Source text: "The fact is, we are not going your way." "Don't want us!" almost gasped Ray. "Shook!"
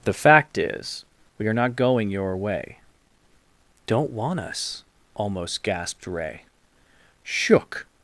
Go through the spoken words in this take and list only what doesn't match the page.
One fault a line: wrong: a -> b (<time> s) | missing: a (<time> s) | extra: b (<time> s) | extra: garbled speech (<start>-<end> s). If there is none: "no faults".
no faults